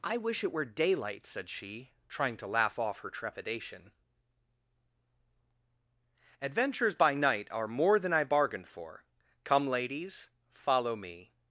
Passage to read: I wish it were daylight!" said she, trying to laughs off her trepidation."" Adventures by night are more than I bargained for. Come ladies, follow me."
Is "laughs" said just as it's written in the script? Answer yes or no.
no